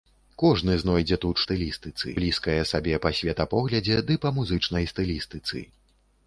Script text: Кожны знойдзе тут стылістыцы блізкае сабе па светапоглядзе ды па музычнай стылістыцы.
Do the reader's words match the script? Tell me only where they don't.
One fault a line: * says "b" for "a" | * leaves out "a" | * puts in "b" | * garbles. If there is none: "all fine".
all fine